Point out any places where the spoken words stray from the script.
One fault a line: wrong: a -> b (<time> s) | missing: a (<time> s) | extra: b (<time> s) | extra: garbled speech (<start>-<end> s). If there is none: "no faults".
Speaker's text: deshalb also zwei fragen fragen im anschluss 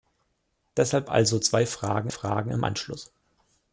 no faults